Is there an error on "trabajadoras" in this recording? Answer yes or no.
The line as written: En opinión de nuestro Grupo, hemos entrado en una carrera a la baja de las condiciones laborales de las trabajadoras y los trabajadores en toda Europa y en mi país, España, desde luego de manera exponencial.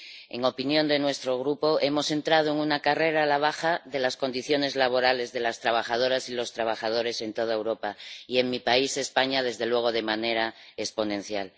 no